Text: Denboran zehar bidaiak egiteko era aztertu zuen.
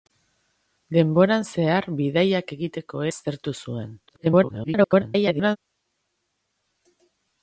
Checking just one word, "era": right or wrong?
wrong